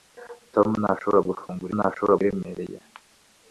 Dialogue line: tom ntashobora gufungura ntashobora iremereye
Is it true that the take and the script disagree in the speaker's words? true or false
false